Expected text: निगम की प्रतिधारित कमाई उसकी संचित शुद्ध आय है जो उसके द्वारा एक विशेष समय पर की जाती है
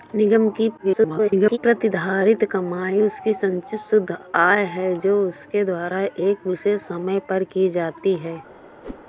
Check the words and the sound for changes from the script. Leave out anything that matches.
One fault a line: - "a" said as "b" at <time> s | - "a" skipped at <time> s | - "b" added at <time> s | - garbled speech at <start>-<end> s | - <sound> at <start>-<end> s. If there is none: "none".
- garbled speech at 0.8-1.6 s
- whoosh at 8.8-9.0 s